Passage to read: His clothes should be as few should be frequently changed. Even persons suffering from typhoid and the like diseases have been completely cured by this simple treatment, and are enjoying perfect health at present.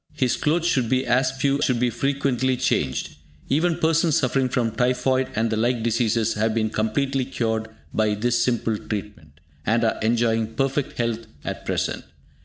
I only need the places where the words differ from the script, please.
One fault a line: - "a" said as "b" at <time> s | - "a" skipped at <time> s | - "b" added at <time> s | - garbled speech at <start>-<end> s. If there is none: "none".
none